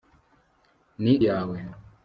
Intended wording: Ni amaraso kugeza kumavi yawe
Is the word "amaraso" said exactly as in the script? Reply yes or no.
no